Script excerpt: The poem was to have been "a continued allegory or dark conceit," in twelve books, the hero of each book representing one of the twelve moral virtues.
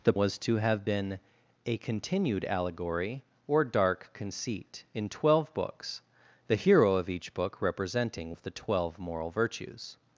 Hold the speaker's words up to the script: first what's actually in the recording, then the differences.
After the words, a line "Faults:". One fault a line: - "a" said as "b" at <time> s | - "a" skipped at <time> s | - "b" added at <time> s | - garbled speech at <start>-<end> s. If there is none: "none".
The was to have been "a continued allegory or dark conceit," in twelve books, the hero of each book representing of the twelve moral virtues.
Faults:
- "poem" skipped at 0.1 s
- "one" skipped at 8.3 s